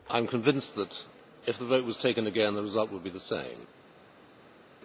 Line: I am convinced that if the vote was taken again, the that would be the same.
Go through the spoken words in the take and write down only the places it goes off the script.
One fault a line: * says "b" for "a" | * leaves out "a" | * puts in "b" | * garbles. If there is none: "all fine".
* says "result" for "that"